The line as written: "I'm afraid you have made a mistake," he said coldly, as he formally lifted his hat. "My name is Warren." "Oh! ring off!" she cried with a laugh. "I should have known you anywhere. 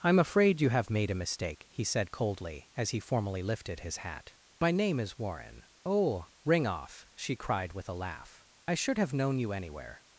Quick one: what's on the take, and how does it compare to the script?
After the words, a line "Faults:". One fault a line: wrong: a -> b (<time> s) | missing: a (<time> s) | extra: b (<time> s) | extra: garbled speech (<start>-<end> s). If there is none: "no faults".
"I'm afraid you have made a mistake," he said coldly, as he formally lifted his hat. "My name is Warren." "Oh! ring off!" she cried with a laugh. "I should have known you anywhere.
Faults:
no faults